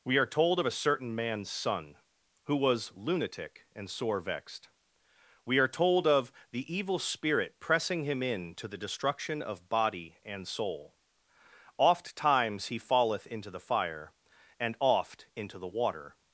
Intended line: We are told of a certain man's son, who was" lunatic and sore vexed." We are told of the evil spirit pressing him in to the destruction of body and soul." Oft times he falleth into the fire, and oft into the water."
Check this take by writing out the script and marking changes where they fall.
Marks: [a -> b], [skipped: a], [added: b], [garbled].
We are told of a certain man's son, who was" lunatic and sore vexed." We are told of the evil spirit pressing him in to the destruction of body and soul." Oft times he falleth into the fire, and oft into the water."